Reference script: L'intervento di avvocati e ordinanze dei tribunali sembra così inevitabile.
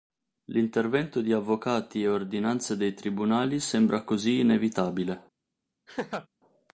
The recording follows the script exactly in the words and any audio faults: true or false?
false